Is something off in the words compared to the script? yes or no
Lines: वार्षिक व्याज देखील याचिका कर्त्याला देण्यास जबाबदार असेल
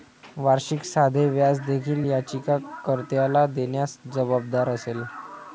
yes